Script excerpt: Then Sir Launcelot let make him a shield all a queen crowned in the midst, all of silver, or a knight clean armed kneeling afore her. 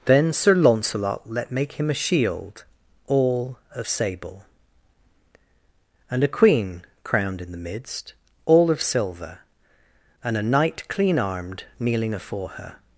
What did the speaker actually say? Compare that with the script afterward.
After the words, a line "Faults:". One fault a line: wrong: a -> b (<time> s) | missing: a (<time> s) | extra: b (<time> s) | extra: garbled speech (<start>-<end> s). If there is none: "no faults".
Then Sir Launcelot let make him a shield all of sable, and a queen crowned in the midst, all of silver, and a knight clean armed kneeling afore her.
Faults:
extra: of sable and (3.8 s)
wrong: or -> and (10.2 s)